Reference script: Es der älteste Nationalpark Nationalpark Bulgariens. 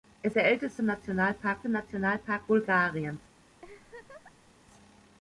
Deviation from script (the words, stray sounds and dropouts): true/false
true